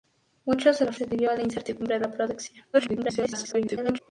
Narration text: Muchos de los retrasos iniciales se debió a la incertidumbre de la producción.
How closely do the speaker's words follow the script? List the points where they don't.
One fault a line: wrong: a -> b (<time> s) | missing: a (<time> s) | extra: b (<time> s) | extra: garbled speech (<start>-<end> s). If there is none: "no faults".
missing: retrasos iniciales (1.0 s)
missing: de (2.0 s)
extra: garbled speech (2.7-4.0 s)